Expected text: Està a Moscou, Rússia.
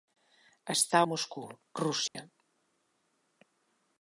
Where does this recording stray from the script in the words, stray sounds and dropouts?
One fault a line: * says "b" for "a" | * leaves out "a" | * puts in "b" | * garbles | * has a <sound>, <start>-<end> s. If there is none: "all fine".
* has a dropout, 2.1-2.1 s